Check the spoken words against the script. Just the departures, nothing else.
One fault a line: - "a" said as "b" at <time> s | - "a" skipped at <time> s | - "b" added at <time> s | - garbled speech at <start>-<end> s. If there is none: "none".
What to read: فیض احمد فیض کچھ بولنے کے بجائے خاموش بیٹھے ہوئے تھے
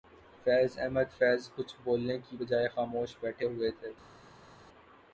- "کے" said as "کی" at 2.2 s